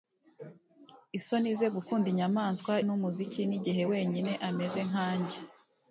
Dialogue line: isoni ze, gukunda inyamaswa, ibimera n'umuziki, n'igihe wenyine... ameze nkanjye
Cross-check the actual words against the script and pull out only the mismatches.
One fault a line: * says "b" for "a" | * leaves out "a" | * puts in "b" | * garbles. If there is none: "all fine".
* leaves out "ibimera"